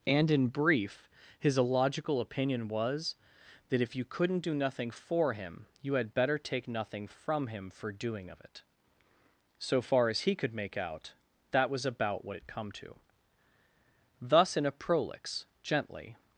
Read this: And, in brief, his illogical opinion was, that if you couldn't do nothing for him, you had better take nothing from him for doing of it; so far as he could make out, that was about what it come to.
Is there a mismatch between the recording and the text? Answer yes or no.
yes